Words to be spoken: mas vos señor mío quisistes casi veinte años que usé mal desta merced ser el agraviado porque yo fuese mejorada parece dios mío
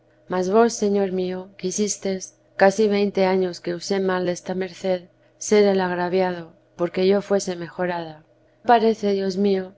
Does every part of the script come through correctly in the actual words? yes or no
yes